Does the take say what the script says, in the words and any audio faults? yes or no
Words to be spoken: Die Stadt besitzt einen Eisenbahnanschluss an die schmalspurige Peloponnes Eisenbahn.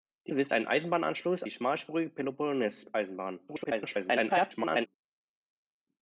no